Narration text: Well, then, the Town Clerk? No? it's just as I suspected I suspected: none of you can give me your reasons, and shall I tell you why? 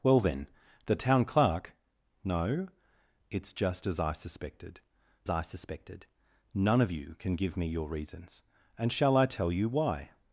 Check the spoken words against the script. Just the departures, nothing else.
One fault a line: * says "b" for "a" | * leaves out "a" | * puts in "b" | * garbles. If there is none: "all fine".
all fine